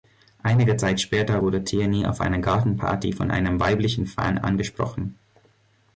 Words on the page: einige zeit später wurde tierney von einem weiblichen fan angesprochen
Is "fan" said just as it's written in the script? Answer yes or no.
yes